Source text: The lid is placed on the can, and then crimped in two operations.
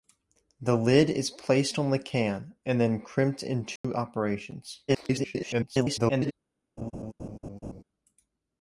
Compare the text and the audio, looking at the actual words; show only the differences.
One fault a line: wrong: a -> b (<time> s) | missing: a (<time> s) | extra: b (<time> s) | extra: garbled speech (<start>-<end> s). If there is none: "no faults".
extra: garbled speech (4.9-6.3 s)